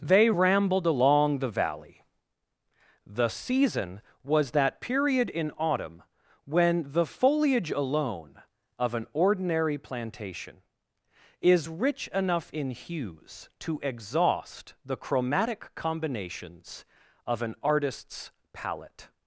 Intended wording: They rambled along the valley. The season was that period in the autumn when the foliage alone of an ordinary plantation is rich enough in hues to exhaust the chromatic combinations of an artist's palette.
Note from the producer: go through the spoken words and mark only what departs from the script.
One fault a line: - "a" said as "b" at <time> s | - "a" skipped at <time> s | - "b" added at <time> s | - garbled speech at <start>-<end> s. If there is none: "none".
- "the" skipped at 5.5 s